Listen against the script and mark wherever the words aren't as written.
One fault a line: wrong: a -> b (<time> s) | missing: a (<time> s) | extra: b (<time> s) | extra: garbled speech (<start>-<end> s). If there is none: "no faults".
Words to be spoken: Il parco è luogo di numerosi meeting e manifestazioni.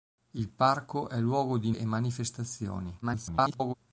missing: numerosi meeting (1.7 s)
extra: garbled speech (3.0-3.7 s)